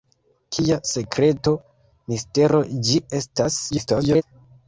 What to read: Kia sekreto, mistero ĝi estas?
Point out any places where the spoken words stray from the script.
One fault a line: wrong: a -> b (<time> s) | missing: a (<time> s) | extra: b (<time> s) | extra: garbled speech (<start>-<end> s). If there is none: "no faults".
extra: garbled speech (3.7-4.2 s)